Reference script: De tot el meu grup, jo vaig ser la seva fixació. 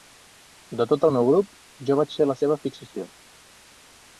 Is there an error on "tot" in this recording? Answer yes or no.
no